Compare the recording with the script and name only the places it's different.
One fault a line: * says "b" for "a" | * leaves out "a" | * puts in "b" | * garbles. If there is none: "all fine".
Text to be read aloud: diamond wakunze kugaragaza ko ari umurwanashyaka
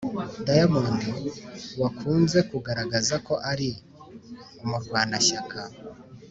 all fine